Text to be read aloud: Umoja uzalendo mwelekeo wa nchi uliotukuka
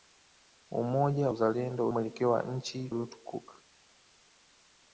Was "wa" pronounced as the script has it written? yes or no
yes